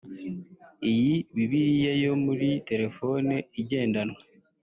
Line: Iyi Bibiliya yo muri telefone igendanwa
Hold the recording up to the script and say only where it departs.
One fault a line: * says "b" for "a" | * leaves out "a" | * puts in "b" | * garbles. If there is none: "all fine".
all fine